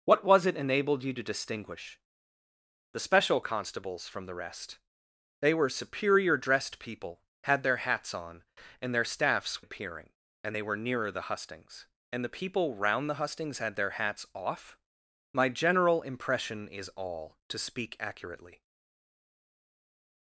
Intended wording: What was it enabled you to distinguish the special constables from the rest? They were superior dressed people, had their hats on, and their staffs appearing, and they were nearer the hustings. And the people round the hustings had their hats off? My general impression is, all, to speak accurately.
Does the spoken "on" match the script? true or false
true